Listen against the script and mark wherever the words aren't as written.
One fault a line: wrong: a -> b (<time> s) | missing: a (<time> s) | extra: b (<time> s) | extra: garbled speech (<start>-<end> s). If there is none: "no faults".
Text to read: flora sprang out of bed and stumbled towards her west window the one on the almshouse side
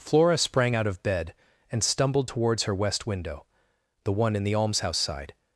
wrong: on -> in (4.4 s)